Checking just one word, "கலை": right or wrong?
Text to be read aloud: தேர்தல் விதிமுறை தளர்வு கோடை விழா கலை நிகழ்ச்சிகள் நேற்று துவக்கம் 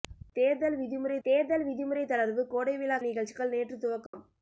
wrong